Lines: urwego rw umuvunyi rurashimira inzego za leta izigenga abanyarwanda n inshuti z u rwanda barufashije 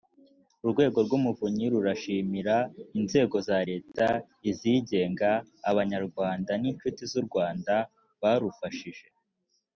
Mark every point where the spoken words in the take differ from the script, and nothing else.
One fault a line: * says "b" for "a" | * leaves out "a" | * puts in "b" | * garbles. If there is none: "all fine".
all fine